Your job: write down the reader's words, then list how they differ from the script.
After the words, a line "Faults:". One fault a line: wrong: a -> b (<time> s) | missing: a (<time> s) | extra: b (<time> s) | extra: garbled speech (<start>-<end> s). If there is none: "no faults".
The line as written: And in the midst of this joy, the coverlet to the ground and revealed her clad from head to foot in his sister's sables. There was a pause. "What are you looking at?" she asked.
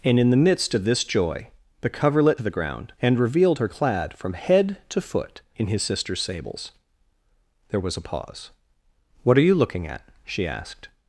And in the midst of this joy, the coverlet to the ground and revealed her clad from head to foot in his sister's sables. There was a pause. "What are you looking at?" she asked.
Faults:
no faults